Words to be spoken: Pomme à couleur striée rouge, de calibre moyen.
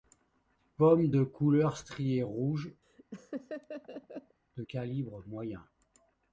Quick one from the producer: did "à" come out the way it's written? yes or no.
no